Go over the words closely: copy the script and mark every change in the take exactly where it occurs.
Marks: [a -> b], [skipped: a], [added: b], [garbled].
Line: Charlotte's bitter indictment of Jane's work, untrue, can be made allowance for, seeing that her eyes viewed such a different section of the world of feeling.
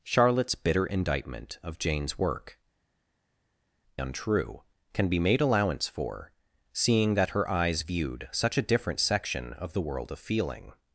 Charlotte's bitter indictment of Jane's work, untrue, can be made allowance for, seeing that her eyes viewed such a different section of the world of feeling.